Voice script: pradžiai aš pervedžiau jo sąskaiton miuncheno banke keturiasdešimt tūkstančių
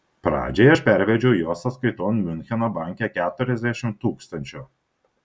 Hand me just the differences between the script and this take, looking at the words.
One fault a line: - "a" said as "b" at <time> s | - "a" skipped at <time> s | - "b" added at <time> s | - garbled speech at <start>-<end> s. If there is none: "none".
none